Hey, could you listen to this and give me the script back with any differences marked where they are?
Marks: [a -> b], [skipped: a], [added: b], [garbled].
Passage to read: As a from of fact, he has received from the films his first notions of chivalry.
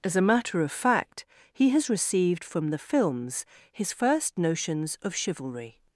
As a [from -> matter] of fact, he has received from the films his first notions of chivalry.